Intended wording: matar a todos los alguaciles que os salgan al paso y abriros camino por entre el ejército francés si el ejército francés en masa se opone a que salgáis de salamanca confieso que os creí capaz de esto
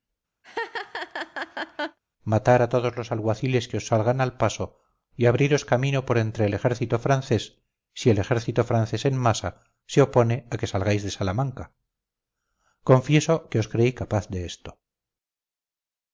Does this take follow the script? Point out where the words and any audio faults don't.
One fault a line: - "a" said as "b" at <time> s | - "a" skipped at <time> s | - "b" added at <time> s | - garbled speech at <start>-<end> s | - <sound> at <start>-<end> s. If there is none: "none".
- laugh at 0.4-2.0 s